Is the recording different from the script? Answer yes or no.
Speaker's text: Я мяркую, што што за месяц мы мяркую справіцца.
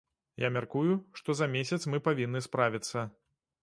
yes